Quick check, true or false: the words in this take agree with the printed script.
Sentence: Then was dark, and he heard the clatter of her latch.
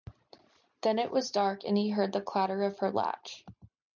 false